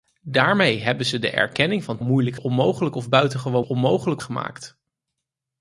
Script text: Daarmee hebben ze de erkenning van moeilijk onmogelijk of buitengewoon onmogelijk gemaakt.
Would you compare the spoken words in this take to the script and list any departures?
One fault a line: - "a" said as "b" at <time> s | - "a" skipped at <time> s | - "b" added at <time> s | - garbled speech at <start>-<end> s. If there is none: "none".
none